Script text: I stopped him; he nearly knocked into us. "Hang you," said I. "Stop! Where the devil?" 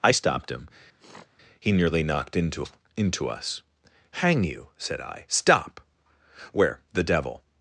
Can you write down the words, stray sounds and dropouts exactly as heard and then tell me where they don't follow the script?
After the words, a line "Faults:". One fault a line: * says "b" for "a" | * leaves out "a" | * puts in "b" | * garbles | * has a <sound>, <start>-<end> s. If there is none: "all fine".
I stopped him; he nearly knocked into into us. "Hang you," said I. "Stop! Where the devil?"
Faults:
* has a sniff, 1.0-1.3 s
* puts in "into"